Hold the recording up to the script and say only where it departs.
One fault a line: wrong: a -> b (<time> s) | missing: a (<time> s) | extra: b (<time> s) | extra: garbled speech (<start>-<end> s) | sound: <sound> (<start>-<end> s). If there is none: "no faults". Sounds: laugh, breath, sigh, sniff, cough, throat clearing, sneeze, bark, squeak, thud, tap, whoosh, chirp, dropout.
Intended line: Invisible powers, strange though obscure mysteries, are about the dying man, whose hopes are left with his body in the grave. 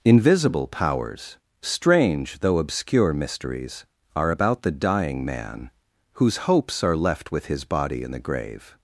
no faults